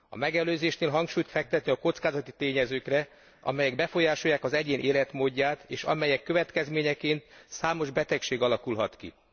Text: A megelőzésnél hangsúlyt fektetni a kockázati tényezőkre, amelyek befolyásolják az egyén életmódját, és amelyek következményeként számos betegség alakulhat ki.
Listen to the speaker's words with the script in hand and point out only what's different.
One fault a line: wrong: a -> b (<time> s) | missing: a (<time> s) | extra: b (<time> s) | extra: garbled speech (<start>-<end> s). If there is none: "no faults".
no faults